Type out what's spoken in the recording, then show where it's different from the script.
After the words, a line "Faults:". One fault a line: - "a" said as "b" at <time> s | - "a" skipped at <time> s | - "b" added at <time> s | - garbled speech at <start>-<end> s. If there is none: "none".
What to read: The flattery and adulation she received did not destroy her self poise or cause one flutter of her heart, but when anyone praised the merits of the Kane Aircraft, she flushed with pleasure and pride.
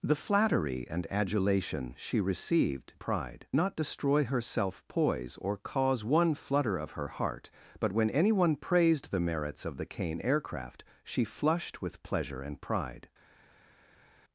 The flattery and adulation she received pride not destroy her self poise or cause one flutter of her heart, but when anyone praised the merits of the Kane Aircraft, she flushed with pleasure and pride.
Faults:
- "did" said as "pride" at 3.0 s